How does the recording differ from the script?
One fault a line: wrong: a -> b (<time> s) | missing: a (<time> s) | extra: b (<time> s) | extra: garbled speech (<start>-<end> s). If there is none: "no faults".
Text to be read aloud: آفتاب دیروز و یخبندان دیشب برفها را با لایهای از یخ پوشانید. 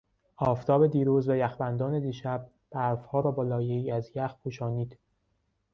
no faults